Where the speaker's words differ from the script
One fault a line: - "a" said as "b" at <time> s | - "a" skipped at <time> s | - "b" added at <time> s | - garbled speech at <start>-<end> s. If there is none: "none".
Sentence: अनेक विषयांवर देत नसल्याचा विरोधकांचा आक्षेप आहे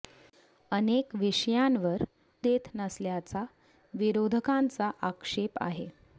none